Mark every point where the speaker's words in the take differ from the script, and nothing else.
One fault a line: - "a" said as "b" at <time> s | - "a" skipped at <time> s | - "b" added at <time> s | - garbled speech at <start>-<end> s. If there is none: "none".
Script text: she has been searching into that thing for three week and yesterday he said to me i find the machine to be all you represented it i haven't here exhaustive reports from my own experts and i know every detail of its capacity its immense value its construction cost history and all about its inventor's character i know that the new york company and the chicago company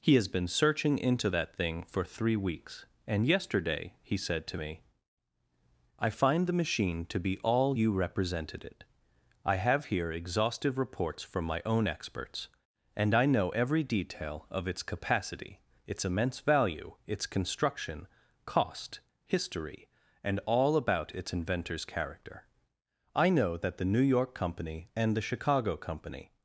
- "she" said as "he" at 0.0 s
- "week" said as "weeks" at 2.4 s
- "haven't" said as "have" at 9.6 s